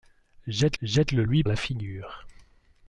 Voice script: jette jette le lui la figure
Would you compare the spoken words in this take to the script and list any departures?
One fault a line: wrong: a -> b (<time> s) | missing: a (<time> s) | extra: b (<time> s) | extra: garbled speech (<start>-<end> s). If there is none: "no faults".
no faults